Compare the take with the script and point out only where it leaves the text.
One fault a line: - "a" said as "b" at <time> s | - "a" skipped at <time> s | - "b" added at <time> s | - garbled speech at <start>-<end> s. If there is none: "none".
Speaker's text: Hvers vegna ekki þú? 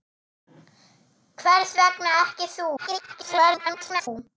- garbled speech at 2.8-4.1 s